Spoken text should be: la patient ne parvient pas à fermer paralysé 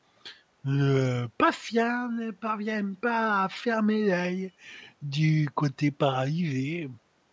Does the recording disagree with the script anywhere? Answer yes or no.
yes